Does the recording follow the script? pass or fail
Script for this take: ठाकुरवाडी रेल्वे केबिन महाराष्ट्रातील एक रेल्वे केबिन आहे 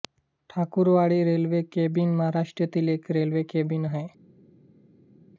pass